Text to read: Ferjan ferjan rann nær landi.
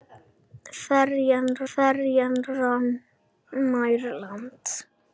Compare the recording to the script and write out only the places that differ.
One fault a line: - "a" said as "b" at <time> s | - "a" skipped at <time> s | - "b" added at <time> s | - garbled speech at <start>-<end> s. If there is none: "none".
none